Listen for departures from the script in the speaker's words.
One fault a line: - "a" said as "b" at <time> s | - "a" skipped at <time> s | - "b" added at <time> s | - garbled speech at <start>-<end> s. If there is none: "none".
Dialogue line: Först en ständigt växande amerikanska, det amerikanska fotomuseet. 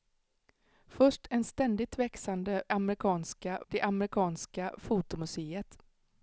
none